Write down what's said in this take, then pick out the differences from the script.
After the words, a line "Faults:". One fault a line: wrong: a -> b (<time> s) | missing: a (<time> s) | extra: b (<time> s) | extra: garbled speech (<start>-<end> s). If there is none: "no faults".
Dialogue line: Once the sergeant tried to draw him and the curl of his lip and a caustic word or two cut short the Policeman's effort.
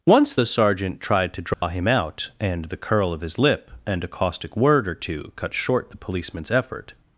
Once the sergeant tried to draw him out and the curl of his lip and a caustic word or two cut short the Policeman's effort.
Faults:
extra: out (1.8 s)